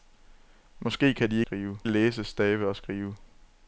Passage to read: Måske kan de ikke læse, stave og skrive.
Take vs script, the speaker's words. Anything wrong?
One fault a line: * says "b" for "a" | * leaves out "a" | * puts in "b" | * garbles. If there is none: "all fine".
* says "skrive" for "ikke"